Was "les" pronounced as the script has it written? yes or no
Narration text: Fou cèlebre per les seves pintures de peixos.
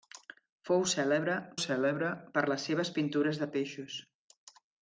yes